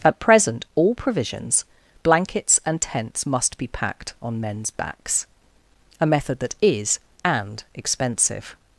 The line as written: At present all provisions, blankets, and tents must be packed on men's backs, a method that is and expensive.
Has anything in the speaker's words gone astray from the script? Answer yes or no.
no